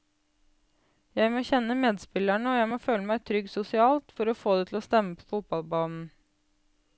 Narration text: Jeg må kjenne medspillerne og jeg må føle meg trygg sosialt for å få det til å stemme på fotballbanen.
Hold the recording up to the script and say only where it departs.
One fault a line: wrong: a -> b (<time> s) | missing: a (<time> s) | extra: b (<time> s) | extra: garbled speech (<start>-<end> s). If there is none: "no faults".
no faults